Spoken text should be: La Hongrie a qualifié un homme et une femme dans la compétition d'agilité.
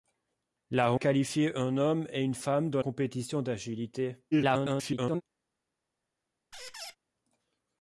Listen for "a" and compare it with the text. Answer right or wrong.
wrong